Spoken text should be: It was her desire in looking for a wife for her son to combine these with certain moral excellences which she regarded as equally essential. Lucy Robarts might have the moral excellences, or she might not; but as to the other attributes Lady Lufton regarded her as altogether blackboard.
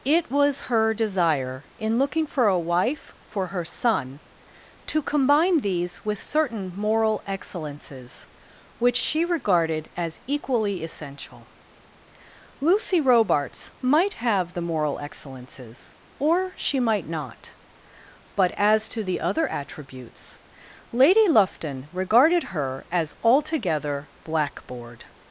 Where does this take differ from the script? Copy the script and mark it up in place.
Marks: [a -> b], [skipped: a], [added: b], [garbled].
It was her desire in looking for a wife for her son to combine these with certain moral excellences which she regarded as equally essential. Lucy Robarts might have the moral excellences, or she might not; but as to the other attributes Lady Lufton regarded her as altogether blackboard.